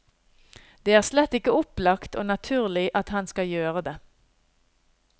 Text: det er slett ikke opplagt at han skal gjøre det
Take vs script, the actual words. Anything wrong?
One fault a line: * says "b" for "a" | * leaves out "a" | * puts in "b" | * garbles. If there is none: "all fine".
* puts in "og naturlig"